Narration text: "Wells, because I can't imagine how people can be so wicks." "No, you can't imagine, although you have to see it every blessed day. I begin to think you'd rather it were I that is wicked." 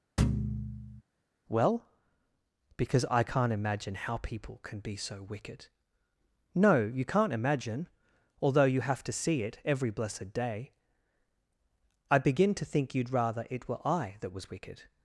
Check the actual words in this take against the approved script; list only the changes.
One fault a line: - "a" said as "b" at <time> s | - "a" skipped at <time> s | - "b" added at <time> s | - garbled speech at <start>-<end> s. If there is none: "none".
- "Wells" said as "Well" at 1.5 s
- "wicks" said as "wicked" at 5.2 s
- "is" said as "was" at 14.3 s